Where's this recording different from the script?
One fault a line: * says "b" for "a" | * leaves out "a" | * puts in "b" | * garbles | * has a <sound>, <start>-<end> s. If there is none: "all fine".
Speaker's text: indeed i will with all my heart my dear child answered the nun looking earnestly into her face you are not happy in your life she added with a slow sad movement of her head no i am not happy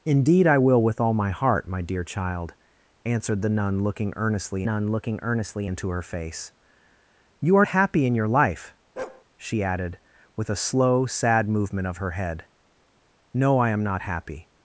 * puts in "nun looking earnestly"
* leaves out "not"
* has a bark, 9.0-9.2 s